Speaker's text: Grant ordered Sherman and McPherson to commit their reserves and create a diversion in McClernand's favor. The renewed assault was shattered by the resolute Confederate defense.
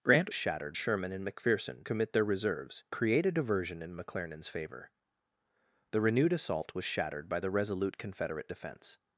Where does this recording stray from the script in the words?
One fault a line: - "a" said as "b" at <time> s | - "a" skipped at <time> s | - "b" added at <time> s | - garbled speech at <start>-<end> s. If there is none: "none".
- "ordered" said as "shattered" at 0.3 s
- "to" skipped at 1.8 s
- "and" skipped at 2.8 s